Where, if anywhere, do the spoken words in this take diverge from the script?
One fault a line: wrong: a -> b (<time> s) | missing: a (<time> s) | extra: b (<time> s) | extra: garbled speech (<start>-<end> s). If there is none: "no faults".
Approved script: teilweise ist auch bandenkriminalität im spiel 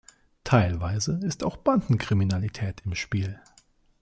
no faults